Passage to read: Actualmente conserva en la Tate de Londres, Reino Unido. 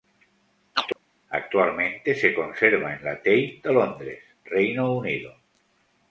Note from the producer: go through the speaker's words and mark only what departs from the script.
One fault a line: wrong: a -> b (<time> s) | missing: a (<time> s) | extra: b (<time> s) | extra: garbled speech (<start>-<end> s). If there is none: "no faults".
extra: se (2.1 s)